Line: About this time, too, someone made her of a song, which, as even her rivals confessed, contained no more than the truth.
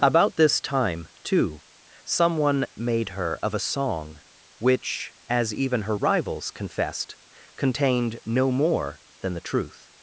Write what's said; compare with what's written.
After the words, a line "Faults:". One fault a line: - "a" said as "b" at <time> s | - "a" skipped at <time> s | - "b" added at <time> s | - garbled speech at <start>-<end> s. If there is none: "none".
About this time, too, someone made her of a song, which, as even her rivals confessed, contained no more than the truth.
Faults:
none